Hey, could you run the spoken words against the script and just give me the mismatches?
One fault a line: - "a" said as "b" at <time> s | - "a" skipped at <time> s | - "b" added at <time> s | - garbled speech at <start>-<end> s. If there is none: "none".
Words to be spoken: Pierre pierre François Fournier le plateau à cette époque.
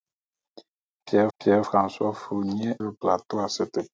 none